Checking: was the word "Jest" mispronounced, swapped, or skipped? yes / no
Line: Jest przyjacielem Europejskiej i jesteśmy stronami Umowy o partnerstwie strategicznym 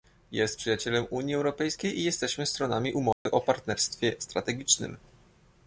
no